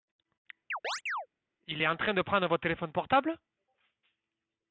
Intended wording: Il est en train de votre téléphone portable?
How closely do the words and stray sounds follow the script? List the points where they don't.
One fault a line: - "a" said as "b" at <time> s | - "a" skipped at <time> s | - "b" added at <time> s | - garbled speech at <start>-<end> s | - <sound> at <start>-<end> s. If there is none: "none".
- chirp at 0.7-1.3 s
- "prendre" added at 2.2 s